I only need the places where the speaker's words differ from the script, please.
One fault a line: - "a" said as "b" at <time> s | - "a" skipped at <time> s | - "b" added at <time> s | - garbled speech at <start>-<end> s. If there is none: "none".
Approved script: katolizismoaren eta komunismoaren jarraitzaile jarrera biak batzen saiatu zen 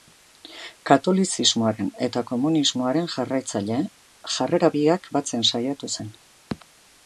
none